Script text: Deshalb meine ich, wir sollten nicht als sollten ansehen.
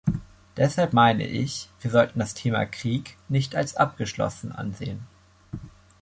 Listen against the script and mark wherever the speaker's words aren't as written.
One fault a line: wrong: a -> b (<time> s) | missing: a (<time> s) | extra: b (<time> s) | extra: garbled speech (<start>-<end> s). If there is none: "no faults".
extra: das Thema Krieg (2.2 s)
wrong: sollten -> abgeschlossen (3.7 s)